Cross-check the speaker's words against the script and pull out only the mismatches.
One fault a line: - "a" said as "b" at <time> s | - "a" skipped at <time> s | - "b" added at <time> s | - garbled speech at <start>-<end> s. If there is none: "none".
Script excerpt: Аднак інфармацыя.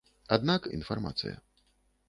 none